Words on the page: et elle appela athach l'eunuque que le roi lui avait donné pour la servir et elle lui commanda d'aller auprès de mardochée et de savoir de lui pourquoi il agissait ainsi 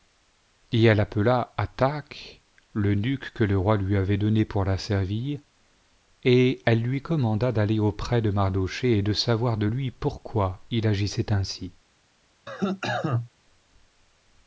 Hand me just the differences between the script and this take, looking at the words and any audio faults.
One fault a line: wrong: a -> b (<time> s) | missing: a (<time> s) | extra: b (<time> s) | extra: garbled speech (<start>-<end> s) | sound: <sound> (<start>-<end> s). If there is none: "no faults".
sound: cough (12.5-13.3 s)